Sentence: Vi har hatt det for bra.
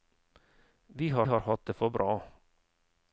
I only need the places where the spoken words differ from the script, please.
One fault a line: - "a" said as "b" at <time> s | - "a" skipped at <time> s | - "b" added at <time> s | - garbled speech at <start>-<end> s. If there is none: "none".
- "har" added at 1.2 s